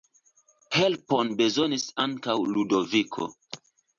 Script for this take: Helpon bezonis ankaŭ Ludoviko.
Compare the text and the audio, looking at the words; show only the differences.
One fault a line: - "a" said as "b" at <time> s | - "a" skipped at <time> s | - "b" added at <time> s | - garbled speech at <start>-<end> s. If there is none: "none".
none